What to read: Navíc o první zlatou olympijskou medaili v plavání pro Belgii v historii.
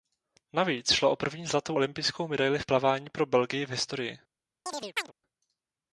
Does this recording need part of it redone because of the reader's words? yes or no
yes